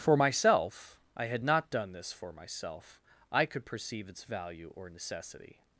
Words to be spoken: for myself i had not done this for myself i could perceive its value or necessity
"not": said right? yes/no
yes